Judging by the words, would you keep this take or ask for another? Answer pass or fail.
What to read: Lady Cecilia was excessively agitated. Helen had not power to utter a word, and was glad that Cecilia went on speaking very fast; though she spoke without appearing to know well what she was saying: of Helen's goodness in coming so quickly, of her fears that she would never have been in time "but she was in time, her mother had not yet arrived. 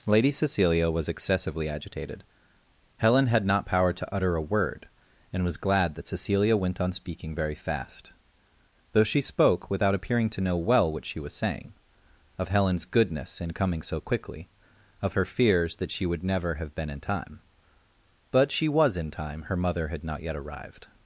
pass